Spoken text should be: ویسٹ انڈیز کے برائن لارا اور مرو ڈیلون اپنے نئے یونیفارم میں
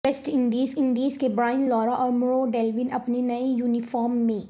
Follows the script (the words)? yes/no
no